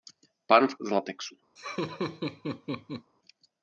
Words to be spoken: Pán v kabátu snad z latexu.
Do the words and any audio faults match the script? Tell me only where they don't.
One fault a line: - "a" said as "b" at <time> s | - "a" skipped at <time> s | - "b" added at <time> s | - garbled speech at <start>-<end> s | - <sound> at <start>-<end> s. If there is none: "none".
- "kabátu snad" skipped at 0.8 s
- laugh at 1.6-3.1 s